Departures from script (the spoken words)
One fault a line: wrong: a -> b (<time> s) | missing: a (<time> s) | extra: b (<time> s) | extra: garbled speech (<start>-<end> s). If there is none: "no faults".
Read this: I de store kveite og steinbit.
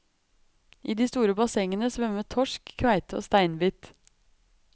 extra: bassengene svømmer torsk (1.4 s)